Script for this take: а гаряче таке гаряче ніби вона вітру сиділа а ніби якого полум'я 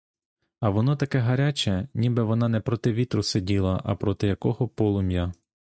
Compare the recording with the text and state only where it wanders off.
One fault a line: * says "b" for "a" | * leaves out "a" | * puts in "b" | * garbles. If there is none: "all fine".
* says "воно" for "гаряче"
* puts in "не проти"
* says "проти" for "ніби"